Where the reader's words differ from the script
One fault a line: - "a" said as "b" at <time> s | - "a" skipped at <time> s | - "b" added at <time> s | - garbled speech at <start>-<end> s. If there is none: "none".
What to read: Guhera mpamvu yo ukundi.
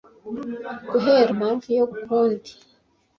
none